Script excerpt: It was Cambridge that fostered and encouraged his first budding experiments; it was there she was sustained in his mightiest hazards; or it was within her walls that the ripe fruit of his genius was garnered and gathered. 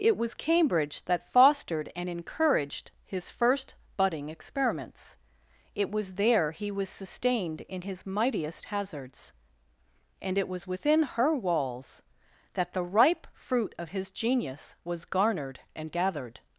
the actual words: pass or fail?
fail